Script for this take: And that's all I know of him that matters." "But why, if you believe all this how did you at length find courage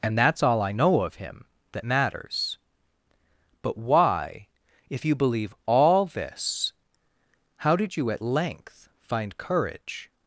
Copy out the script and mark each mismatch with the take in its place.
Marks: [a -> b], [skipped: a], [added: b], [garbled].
And that's all I know of him that matters." "But why, if you believe all this how did you at length find courage